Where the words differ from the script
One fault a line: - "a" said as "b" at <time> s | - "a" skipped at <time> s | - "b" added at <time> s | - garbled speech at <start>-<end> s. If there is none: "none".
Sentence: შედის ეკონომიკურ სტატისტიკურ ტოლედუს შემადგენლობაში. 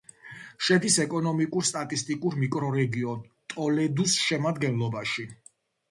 - "მიკრორეგიონ" added at 2.5 s